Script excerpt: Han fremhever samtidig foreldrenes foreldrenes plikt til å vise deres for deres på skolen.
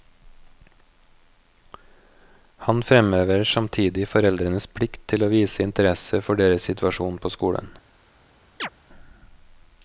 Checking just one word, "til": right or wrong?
right